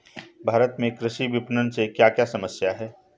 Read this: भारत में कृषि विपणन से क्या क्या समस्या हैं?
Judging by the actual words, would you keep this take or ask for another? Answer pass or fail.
pass